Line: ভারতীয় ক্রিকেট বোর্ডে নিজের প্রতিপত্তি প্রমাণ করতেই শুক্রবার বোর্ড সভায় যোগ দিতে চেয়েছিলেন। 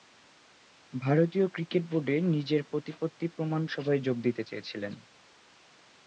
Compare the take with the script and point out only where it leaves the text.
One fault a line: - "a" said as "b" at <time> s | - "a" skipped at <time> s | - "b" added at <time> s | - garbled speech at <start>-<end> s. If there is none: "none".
- "করতেই শুক্রবার বোর্ড" skipped at 3.6 s